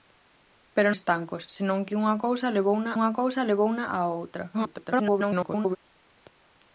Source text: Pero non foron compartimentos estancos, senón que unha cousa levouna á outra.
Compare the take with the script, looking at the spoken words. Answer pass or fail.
fail